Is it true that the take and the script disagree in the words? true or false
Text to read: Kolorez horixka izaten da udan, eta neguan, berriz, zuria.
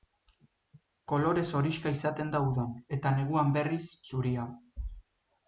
false